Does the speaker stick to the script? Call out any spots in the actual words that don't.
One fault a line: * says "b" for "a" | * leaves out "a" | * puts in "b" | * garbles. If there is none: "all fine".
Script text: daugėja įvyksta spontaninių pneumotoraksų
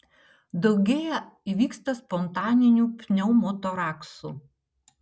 all fine